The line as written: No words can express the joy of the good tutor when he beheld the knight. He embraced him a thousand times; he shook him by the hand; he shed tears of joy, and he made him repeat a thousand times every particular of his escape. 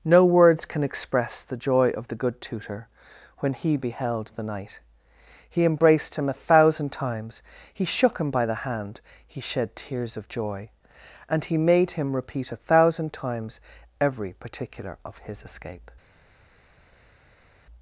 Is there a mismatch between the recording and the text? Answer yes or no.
no